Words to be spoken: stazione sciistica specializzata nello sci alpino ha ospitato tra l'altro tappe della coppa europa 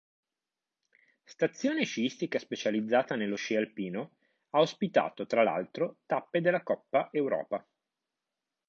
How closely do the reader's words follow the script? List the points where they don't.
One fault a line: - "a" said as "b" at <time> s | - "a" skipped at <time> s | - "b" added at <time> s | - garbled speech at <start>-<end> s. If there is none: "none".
none